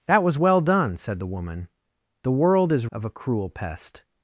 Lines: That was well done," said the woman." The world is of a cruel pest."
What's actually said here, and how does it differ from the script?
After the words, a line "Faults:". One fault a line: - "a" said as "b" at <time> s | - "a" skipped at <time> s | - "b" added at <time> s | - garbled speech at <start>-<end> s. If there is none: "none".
That was well done," said the woman." The world is of a cruel pest."
Faults:
none